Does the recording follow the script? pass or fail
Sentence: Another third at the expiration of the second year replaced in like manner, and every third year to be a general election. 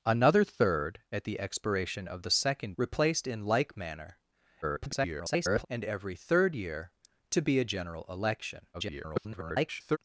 fail